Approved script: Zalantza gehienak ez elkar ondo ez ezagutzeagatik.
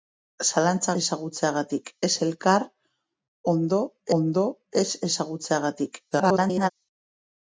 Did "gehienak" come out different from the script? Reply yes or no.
yes